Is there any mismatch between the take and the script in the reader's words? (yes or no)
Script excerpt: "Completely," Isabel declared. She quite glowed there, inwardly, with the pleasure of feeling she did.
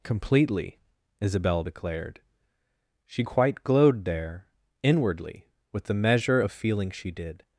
yes